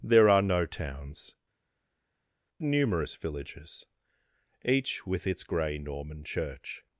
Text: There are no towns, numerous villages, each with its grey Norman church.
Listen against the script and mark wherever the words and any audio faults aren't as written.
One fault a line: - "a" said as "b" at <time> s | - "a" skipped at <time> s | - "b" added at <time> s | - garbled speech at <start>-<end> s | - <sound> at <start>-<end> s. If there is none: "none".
none